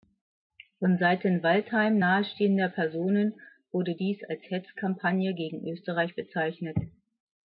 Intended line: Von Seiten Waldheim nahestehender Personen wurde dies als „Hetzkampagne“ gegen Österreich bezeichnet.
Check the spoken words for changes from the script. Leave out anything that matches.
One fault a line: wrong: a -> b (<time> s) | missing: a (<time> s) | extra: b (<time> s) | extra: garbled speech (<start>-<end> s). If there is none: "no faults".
no faults